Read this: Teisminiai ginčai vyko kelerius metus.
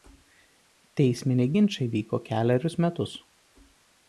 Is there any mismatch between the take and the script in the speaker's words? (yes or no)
no